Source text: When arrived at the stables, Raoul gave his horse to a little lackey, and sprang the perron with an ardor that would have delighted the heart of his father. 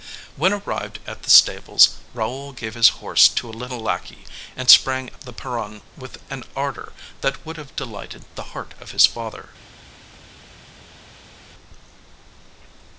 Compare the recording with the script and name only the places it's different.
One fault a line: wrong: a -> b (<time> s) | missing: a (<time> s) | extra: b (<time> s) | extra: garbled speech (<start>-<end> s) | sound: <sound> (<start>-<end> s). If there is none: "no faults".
no faults